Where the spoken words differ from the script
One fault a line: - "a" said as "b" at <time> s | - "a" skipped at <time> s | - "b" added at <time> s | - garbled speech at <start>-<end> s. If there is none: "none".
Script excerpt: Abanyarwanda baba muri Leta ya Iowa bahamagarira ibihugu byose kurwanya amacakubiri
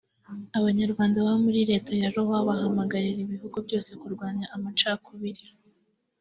none